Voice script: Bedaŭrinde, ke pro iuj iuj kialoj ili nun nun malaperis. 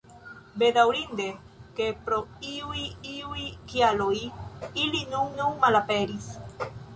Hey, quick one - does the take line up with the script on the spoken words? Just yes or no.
yes